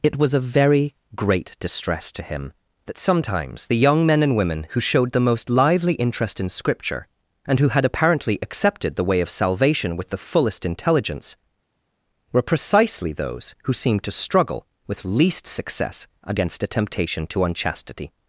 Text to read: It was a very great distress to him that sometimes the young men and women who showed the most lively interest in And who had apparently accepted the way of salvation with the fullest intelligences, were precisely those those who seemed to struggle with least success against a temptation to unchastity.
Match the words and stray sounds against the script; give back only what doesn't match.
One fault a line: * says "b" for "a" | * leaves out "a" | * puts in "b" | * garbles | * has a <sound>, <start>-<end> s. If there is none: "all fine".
* puts in "Scripture"
* says "intelligence" for "intelligences"
* leaves out "those"